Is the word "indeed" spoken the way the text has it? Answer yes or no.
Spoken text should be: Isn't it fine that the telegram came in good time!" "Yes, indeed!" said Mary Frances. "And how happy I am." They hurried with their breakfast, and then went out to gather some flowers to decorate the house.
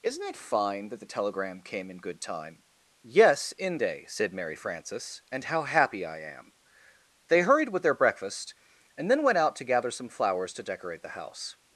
no